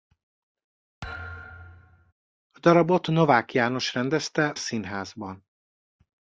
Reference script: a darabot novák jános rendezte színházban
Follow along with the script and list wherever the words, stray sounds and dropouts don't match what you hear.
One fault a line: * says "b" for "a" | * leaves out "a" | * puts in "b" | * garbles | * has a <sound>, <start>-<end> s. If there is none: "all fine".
* has a thud, 1.0-2.1 s